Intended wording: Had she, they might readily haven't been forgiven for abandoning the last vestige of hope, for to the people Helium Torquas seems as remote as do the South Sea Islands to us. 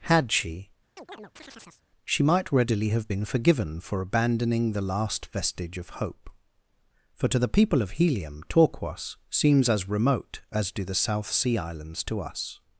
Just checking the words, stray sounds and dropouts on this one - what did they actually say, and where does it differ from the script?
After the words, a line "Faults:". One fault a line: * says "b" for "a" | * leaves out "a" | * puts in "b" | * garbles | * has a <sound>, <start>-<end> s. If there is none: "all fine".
Had she, she might readily have been forgiven for abandoning the last vestige of hope, for to the people of Helium Torquas seems as remote as do the South Sea Islands to us.
Faults:
* has a chirp, 1.0-1.8 s
* says "she" for "they"
* says "have" for "haven't"
* puts in "of"